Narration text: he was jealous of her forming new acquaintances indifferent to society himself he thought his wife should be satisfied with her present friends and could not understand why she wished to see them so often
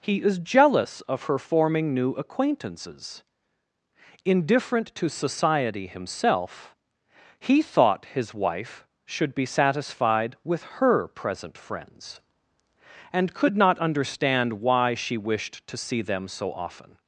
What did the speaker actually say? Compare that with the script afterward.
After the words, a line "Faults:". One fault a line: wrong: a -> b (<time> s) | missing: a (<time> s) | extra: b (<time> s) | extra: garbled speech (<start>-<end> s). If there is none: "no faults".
he is jealous of her forming new acquaintances indifferent to society himself he thought his wife should be satisfied with her present friends and could not understand why she wished to see them so often
Faults:
wrong: was -> is (0.2 s)